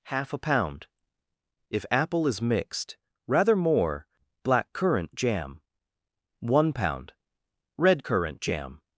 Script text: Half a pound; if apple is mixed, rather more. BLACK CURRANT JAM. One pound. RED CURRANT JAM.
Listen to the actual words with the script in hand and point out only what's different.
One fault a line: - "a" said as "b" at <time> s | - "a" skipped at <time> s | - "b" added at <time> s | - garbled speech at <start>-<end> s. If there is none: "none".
none